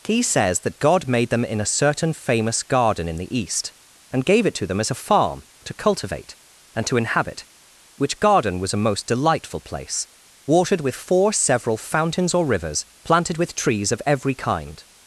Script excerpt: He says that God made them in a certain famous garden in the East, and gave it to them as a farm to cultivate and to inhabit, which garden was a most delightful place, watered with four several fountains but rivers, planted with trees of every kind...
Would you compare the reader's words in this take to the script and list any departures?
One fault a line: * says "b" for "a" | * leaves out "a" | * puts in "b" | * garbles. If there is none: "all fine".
* says "or" for "but"